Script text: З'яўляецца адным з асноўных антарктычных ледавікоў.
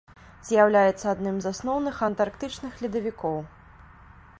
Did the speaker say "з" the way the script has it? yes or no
yes